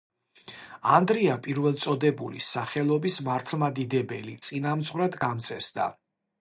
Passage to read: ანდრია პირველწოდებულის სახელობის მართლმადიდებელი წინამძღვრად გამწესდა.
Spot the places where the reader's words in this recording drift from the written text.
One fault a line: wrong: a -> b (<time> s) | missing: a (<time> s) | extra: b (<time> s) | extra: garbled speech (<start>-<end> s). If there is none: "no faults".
no faults